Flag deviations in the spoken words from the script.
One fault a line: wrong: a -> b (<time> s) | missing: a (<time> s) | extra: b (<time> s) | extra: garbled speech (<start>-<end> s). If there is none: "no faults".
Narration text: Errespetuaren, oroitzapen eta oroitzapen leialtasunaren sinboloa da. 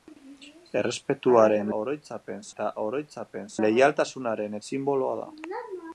no faults